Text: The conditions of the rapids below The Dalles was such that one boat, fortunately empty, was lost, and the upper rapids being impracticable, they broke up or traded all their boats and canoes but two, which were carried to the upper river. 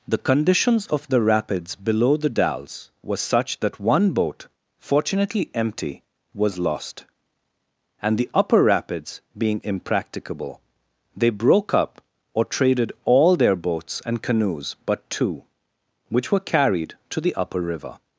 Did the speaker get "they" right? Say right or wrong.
right